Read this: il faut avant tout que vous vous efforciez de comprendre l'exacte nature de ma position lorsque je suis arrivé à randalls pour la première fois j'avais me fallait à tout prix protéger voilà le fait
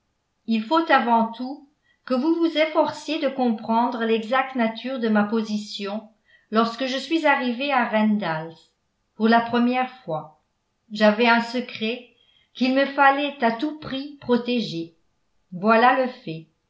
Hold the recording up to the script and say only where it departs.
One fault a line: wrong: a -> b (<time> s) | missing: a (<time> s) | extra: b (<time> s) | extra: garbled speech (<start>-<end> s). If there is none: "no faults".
extra: un secret qu'il (11.3 s)